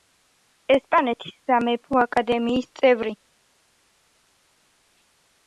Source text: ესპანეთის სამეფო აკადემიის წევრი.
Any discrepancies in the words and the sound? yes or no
no